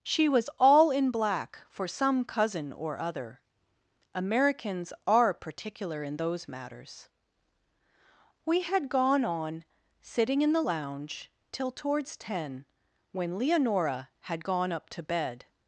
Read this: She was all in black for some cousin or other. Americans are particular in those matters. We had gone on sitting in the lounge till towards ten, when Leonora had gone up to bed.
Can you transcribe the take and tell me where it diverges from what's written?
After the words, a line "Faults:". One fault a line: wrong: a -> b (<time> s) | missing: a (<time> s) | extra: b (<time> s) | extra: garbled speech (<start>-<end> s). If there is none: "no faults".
She was all in black for some cousin or other. Americans are particular in those matters. We had gone on sitting in the lounge till towards ten, when Leonora had gone up to bed.
Faults:
no faults